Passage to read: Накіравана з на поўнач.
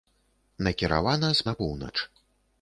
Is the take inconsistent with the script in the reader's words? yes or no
no